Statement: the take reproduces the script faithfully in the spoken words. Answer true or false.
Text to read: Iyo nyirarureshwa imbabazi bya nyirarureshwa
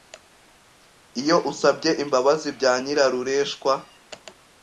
false